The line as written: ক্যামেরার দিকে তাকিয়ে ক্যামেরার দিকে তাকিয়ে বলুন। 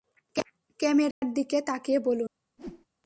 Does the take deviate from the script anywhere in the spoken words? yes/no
yes